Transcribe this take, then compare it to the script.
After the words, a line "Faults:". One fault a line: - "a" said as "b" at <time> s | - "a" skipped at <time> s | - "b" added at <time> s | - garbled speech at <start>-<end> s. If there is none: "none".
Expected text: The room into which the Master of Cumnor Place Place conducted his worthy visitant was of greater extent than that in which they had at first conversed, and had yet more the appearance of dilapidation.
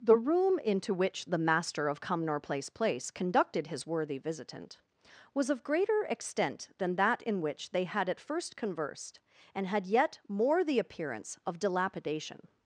The room into which the Master of Cumnor Place Place conducted his worthy visitant was of greater extent than that in which they had at first conversed, and had yet more the appearance of dilapidation.
Faults:
none